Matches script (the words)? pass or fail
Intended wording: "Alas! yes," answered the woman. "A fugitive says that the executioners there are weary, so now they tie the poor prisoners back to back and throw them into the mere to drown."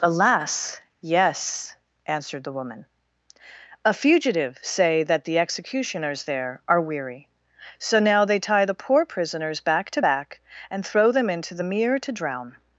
fail